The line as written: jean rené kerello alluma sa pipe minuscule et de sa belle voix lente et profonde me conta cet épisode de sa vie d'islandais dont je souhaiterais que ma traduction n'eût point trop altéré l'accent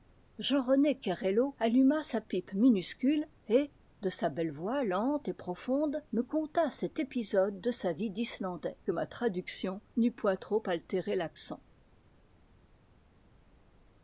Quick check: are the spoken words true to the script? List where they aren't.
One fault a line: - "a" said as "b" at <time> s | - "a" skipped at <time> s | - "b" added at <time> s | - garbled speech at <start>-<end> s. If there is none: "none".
- "dont je souhaiterais" skipped at 8.8 s